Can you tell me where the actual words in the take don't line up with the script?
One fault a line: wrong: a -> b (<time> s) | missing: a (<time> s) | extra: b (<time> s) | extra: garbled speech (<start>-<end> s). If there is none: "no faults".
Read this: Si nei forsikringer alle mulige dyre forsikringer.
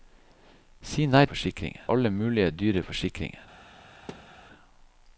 no faults